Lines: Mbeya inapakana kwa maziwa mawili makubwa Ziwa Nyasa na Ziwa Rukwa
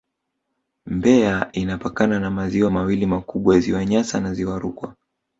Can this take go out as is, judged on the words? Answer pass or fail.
fail